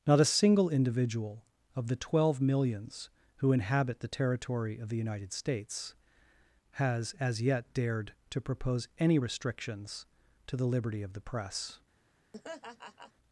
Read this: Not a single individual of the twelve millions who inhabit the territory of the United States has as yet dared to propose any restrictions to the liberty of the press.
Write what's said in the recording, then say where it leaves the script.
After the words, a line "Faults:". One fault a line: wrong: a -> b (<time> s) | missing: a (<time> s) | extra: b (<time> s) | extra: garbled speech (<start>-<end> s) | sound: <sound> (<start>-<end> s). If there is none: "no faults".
Not a single individual of the twelve millions who inhabit the territory of the United States has as yet dared to propose any restrictions to the liberty of the press.
Faults:
sound: laugh (12.3-13.1 s)